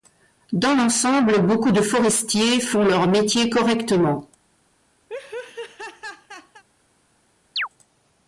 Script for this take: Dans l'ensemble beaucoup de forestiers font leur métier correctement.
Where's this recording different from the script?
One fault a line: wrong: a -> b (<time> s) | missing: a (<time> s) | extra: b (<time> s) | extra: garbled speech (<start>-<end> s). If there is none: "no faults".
no faults